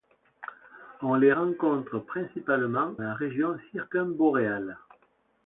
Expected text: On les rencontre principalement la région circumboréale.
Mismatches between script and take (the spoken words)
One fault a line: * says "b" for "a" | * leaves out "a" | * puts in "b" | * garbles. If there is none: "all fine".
all fine